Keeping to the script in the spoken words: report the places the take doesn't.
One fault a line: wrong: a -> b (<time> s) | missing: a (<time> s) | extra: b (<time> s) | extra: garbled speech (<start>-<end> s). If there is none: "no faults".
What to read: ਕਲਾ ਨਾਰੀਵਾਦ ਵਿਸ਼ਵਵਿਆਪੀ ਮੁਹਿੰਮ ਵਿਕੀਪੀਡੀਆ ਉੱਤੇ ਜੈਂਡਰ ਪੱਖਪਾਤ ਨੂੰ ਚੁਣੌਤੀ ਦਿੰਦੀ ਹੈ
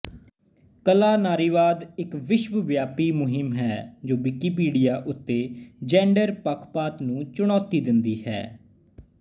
extra: ਇੱਕ (2.0 s)
extra: ਹੈ ਜੋ (3.5 s)